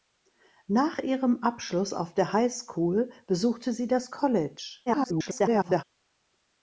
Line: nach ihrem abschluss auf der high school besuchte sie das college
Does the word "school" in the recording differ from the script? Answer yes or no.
no